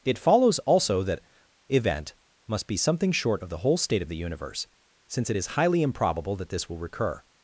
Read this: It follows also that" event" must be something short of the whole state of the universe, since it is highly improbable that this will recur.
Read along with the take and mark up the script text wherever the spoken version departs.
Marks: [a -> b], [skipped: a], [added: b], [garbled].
It follows also that" event" must be something short of the whole state of the universe, since it is highly improbable that this will recur.